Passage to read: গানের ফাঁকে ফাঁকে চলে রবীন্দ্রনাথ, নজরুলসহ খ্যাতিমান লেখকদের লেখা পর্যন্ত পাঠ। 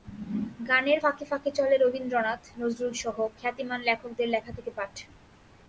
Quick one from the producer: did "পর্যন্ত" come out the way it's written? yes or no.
no